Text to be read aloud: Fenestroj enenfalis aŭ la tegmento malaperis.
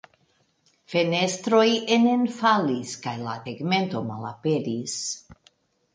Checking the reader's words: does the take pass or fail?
fail